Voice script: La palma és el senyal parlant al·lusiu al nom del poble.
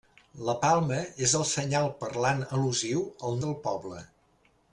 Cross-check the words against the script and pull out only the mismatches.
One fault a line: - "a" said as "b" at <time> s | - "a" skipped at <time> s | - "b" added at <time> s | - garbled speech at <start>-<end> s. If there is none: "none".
- "nom" skipped at 3.4 s